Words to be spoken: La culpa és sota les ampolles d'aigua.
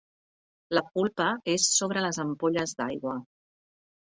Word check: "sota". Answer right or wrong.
wrong